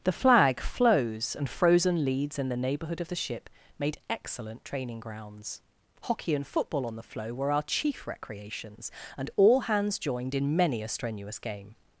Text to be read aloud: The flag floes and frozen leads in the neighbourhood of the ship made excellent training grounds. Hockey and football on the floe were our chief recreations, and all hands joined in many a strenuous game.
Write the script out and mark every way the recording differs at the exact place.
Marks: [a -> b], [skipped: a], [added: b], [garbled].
The flag floes and frozen leads in the neighbourhood of the ship made excellent training grounds. Hockey and football on the floe were our chief recreations, and all hands joined in many a strenuous game.